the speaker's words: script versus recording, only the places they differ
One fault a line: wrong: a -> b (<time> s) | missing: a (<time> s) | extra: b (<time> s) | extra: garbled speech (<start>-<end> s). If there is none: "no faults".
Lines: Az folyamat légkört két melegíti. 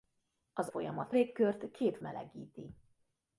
no faults